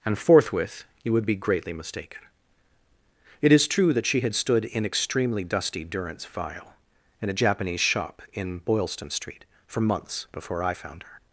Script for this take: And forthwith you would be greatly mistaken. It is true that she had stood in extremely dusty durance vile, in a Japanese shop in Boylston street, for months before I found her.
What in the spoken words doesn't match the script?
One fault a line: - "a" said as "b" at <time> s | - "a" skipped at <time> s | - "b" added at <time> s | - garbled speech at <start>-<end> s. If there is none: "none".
none